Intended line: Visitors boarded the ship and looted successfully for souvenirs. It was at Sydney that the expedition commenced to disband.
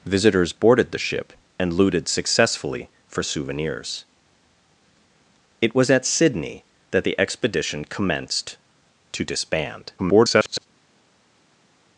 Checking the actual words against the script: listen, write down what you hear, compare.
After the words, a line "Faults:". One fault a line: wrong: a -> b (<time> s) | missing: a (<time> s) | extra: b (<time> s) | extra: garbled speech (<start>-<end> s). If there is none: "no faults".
Visitors boarded the ship and looted successfully for souvenirs. It was at Sydney that the expedition commenced to disband. [garbled]
Faults:
extra: garbled speech (10.0-10.7 s)